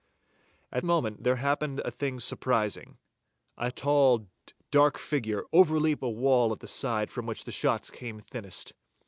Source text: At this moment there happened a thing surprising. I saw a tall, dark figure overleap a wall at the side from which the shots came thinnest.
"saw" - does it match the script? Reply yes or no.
no